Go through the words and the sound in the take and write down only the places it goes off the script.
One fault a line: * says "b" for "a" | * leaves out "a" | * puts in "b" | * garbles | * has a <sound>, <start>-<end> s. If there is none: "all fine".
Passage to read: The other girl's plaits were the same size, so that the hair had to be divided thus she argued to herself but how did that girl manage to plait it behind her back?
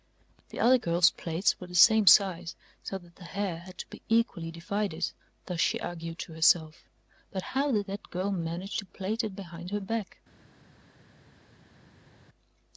* puts in "equally"